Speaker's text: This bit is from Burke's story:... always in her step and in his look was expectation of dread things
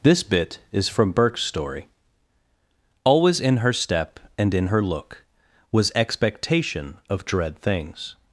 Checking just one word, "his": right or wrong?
wrong